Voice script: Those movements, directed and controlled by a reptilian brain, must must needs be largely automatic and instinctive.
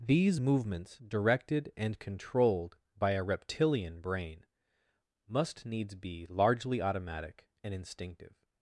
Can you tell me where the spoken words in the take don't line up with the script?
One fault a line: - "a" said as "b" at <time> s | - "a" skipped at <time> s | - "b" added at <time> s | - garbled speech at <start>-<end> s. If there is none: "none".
- "Those" said as "These" at 0.0 s
- "must" skipped at 5.7 s